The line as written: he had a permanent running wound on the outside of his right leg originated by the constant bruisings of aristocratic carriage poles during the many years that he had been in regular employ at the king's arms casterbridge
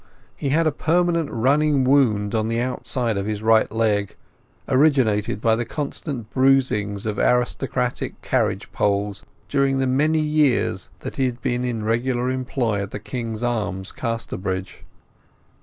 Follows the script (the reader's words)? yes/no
yes